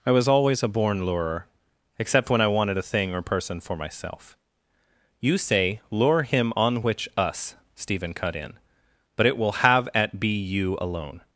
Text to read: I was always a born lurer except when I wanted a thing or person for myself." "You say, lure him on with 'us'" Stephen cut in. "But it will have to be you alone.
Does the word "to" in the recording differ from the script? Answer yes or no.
yes